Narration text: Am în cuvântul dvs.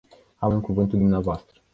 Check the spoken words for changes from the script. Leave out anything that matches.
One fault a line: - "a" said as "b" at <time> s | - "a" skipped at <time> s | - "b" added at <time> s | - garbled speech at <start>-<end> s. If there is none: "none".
none